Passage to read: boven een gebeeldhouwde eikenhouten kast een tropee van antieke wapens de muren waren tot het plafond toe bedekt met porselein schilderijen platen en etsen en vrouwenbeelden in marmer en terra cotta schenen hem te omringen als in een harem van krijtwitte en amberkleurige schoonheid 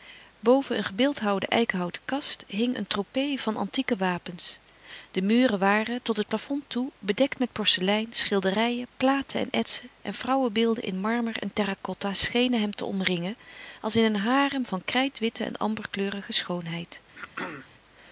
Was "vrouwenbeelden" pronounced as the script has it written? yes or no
yes